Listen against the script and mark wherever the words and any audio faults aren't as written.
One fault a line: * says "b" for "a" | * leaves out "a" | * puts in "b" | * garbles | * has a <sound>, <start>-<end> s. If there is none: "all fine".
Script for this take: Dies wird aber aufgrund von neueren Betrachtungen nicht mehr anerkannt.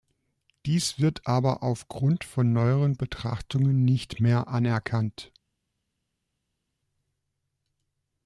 all fine